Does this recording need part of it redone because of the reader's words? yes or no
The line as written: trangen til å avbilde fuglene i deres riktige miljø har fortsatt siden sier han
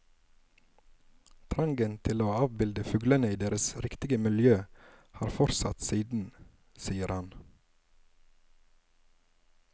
no